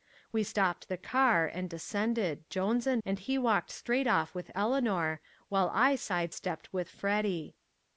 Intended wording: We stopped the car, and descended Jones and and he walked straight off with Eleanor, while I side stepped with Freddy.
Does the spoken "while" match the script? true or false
true